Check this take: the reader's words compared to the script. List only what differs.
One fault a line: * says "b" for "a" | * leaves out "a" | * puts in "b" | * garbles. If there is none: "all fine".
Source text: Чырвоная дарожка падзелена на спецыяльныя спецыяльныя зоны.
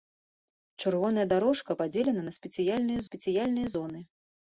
all fine